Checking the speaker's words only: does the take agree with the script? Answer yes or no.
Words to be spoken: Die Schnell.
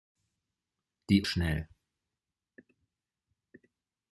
yes